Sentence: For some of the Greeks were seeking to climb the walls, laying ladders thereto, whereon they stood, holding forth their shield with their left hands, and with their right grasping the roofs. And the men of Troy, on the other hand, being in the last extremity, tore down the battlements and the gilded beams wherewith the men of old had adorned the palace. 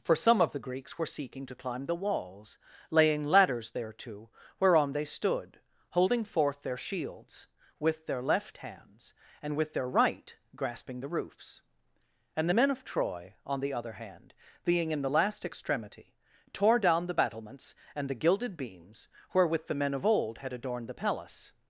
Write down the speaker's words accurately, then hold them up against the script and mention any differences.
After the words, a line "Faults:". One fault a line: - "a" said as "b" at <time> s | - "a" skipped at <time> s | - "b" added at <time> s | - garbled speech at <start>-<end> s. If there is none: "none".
For some of the Greeks were seeking to climb the walls, laying ladders thereto, whereon they stood, holding forth their shields with their left hands, and with their right grasping the roofs. And the men of Troy, on the other hand, being in the last extremity, tore down the battlements and the gilded beams wherewith the men of old had adorned the palace.
Faults:
- "shield" said as "shields" at 6.8 s